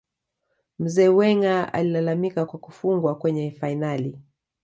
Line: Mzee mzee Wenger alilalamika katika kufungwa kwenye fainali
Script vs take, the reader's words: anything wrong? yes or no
yes